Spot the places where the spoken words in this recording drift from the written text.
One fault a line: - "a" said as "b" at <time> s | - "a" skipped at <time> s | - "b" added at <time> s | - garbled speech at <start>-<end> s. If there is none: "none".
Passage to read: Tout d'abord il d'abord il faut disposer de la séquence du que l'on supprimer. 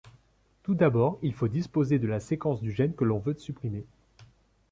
- "d'abord il" skipped at 1.3 s
- "gène" added at 2.7 s
- "veut" added at 3.2 s